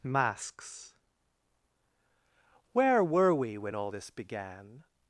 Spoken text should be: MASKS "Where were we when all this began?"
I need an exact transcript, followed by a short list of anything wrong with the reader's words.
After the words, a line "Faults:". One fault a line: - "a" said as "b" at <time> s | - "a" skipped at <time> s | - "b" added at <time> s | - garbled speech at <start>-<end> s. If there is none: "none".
MASKS "Where were we when all this began?"
Faults:
none